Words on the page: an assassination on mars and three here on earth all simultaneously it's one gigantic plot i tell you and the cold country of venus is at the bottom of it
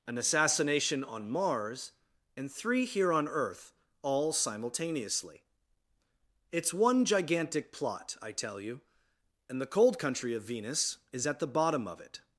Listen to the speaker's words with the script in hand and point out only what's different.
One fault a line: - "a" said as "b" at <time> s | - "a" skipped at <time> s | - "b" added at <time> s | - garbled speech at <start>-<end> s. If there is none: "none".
none